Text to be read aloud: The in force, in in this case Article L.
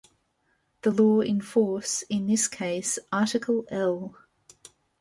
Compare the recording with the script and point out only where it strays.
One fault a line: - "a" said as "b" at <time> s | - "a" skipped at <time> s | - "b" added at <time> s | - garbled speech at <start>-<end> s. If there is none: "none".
- "law" added at 0.9 s
- "in" skipped at 2.3 s